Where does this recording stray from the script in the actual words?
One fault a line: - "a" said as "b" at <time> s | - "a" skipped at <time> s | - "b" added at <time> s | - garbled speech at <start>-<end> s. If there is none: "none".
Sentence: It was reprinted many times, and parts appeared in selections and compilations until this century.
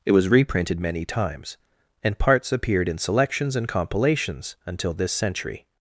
none